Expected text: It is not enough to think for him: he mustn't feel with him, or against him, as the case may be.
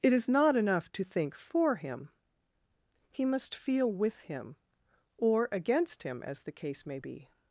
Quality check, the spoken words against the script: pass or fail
fail